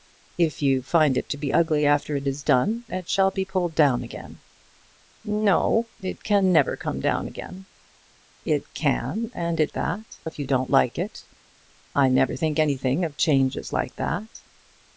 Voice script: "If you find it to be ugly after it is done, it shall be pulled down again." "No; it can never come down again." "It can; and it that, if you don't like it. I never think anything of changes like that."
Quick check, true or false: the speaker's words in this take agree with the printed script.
true